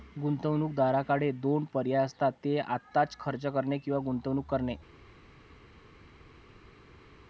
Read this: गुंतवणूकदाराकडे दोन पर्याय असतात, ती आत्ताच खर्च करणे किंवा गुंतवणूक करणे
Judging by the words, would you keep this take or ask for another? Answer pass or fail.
fail